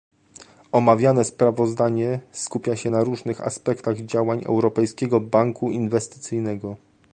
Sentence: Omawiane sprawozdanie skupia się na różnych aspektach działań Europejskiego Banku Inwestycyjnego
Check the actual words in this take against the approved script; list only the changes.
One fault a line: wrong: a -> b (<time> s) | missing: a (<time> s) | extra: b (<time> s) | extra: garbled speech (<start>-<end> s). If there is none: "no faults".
no faults